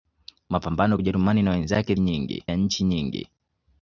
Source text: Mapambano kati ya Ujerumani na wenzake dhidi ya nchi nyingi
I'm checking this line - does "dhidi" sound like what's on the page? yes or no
no